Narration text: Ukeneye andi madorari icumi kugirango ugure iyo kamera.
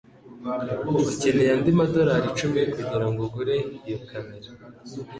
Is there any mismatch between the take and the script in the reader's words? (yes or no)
no